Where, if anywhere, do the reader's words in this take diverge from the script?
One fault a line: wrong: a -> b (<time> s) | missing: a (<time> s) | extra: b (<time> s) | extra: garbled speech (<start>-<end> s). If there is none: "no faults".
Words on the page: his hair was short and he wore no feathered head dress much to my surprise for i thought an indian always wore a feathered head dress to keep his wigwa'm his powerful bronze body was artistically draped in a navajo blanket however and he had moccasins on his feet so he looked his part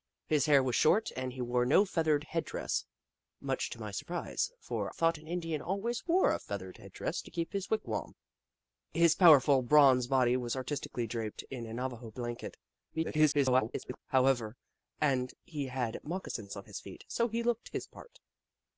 missing: i (4.9 s)
extra: garbled speech (12.9-14.0 s)